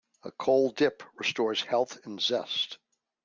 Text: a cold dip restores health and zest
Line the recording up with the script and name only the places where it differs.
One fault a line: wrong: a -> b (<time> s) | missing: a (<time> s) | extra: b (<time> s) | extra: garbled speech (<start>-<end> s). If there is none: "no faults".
no faults